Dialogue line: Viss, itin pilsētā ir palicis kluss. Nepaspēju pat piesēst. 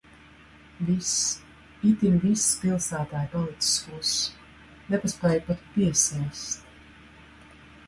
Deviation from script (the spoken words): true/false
true